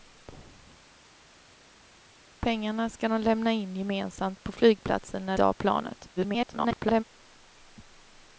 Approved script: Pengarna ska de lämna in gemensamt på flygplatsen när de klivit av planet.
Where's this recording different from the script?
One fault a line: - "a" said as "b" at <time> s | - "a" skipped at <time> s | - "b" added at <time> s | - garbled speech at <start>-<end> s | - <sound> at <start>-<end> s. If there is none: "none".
- "de klivit" skipped at 5.4 s
- garbled speech at 6.2-7.0 s